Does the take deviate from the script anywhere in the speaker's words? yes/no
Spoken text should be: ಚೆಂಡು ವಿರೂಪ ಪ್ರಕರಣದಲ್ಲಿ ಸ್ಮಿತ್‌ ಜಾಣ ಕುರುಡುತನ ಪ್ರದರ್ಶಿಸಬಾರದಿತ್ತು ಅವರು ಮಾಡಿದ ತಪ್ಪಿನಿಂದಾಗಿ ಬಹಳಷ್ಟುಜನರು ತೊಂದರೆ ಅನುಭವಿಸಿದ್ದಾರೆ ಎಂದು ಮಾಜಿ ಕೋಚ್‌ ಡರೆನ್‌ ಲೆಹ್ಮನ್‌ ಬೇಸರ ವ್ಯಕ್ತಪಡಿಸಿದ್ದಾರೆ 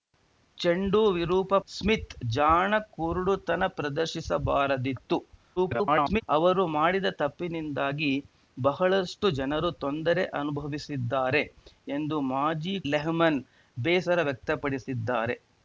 yes